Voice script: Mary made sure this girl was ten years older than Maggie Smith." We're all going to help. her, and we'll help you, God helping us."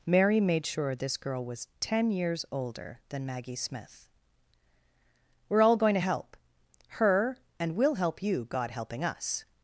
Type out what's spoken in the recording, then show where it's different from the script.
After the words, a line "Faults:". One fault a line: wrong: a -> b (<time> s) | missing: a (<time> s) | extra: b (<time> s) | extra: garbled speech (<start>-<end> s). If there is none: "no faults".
Mary made sure this girl was ten years older than Maggie Smith." We're all going to help. her, and we'll help you, God helping us."
Faults:
no faults